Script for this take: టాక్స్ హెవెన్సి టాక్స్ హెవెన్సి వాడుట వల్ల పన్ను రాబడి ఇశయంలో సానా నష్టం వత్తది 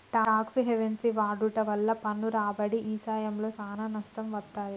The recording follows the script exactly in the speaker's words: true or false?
false